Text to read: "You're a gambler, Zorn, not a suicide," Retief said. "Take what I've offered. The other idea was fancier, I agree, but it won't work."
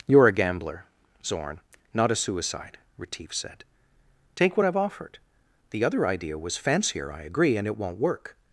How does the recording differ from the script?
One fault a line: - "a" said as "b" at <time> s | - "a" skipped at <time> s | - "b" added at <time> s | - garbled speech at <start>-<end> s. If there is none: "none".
- "but" said as "and" at 7.6 s